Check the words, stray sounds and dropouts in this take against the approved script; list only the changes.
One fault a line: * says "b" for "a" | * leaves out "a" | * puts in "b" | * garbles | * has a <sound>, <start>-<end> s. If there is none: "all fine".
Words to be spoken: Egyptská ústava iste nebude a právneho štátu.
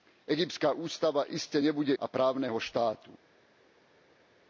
all fine